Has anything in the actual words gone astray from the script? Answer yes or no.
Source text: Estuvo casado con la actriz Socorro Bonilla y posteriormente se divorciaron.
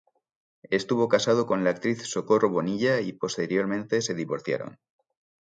no